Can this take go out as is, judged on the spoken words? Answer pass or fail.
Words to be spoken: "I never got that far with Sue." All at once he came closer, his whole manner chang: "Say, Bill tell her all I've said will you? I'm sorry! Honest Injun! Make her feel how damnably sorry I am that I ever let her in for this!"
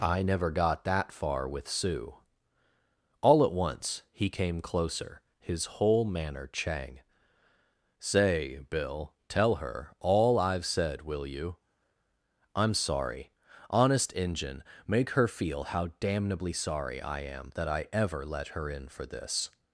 pass